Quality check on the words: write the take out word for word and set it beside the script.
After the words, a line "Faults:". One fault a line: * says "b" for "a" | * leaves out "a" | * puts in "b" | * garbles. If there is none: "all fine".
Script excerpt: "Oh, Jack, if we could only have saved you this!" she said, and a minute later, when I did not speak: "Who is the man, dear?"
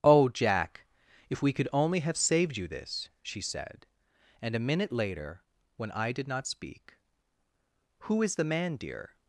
"Oh, Jack, if we could only have saved you this!" she said, and a minute later, when I did not speak: "Who is the man, dear?"
Faults:
all fine